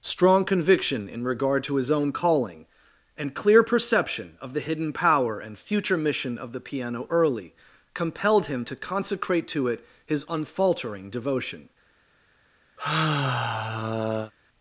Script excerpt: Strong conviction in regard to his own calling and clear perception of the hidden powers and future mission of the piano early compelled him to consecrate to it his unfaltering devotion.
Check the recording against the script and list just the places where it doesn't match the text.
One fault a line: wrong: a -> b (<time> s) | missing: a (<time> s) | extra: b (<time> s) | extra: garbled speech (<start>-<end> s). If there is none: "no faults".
wrong: powers -> power (4.9 s)